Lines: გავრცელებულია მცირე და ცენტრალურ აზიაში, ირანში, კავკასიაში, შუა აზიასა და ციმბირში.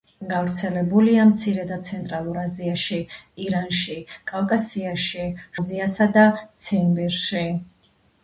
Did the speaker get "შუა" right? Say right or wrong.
wrong